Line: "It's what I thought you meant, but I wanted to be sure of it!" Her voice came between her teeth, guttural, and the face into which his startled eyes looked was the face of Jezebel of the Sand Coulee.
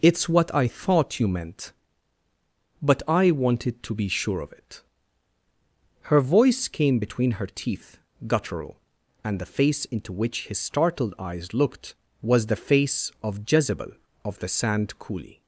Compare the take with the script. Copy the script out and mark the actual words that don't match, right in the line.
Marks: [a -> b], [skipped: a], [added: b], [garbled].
"It's what I thought you meant, but I wanted to be sure of it!" Her voice came between her teeth, guttural, and the face into which his startled eyes looked was the face of Jezebel of the Sand Coulee.